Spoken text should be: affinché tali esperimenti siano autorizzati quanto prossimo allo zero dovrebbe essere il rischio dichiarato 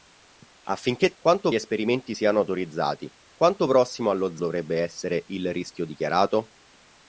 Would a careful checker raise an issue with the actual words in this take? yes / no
yes